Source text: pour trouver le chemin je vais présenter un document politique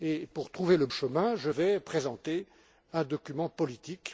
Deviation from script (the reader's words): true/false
false